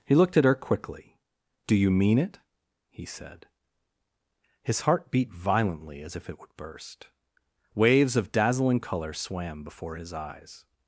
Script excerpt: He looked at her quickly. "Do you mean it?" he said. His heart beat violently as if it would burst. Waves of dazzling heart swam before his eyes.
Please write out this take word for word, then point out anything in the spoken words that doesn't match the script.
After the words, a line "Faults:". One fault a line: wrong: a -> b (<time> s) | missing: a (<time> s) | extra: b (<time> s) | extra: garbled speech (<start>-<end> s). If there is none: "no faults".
He looked at her quickly. "Do you mean it?" he said. His heart beat violently as if it would burst. Waves of dazzling color swam before his eyes.
Faults:
wrong: heart -> color (8.8 s)